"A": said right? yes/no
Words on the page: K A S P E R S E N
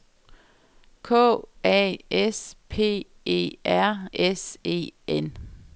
yes